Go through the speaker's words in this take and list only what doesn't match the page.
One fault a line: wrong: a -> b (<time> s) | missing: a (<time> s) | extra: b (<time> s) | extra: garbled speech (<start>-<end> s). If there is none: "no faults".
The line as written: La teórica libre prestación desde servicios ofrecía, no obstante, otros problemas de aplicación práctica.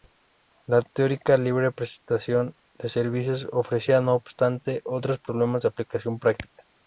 wrong: desde -> de (2.8 s)